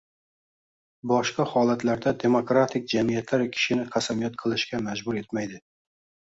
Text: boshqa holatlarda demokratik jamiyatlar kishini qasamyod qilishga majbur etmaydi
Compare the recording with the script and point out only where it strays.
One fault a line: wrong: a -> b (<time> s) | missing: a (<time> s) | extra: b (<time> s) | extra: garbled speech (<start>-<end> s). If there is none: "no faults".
no faults